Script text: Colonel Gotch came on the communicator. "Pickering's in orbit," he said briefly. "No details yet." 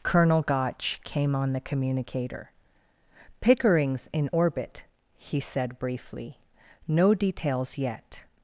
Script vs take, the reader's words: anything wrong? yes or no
no